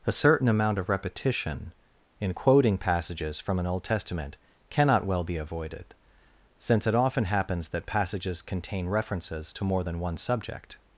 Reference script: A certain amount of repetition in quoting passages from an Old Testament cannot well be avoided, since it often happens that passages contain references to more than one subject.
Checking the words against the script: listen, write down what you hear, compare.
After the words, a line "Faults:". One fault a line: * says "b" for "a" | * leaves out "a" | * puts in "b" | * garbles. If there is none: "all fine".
A certain amount of repetition in quoting passages from an Old Testament cannot well be avoided, since it often happens that passages contain references to more than one subject.
Faults:
all fine